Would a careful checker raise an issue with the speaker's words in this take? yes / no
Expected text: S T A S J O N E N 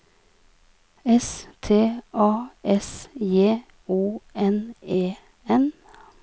no